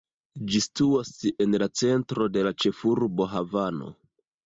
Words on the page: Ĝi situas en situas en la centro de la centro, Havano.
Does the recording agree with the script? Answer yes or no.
no